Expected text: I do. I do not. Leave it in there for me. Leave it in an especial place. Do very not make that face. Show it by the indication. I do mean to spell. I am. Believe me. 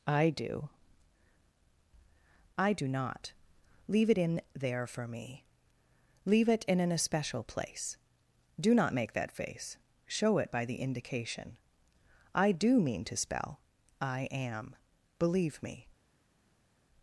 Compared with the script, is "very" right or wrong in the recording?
wrong